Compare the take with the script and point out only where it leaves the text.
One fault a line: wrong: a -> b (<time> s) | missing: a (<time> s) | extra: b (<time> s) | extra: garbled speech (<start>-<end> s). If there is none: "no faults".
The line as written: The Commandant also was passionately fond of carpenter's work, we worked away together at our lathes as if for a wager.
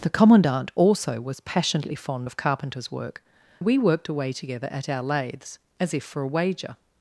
no faults